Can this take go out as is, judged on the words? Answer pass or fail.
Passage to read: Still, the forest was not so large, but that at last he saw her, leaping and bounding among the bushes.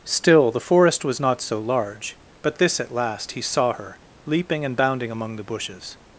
fail